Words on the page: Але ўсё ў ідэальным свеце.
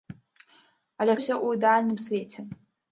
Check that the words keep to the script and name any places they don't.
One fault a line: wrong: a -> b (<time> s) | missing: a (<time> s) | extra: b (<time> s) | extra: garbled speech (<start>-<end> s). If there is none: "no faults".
no faults